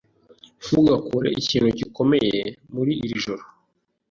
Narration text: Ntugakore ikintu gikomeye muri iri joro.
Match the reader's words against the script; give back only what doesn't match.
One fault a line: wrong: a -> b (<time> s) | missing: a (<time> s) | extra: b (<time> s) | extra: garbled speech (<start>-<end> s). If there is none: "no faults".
no faults